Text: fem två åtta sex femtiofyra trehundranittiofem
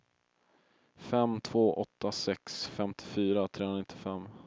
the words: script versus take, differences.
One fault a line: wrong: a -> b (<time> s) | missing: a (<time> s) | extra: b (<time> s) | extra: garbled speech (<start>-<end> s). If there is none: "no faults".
no faults